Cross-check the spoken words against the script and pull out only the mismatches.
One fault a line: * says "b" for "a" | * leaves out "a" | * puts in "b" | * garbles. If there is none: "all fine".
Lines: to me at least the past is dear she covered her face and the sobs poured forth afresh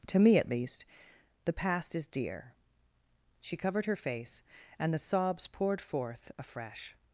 all fine